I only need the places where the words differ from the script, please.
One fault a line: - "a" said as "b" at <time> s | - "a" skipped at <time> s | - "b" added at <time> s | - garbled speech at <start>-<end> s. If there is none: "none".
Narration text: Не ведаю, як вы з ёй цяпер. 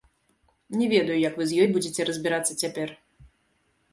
- "будзеце разбірацца" added at 1.7 s